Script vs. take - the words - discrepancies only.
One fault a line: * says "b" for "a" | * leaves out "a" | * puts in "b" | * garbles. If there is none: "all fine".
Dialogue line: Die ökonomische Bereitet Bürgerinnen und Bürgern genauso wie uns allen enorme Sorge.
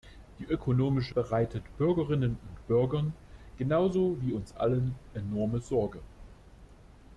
all fine